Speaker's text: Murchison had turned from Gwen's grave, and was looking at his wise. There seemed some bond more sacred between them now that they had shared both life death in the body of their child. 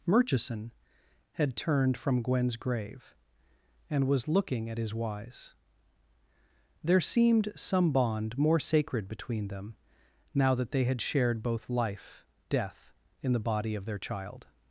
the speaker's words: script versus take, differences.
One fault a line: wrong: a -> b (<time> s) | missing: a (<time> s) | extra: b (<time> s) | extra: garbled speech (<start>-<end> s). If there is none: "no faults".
no faults